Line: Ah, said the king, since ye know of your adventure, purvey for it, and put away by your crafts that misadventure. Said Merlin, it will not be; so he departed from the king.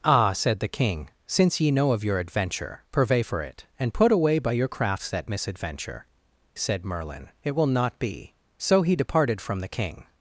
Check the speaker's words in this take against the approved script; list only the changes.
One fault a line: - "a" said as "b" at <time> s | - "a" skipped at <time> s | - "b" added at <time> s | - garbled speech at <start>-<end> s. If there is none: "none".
none